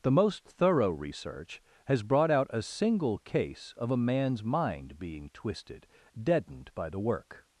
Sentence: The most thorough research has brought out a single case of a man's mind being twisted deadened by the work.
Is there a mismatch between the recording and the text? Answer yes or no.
no